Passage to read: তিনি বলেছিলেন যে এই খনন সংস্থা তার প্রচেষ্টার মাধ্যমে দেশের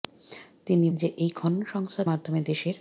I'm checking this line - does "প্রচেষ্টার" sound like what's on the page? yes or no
no